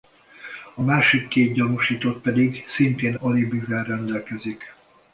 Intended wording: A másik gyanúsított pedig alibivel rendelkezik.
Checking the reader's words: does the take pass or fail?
fail